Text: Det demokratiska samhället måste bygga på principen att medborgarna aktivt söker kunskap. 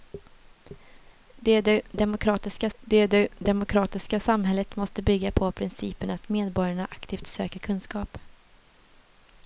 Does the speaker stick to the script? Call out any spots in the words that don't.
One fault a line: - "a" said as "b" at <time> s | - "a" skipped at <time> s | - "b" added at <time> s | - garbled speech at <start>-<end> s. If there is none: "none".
- "det demokratiska" added at 2.8 s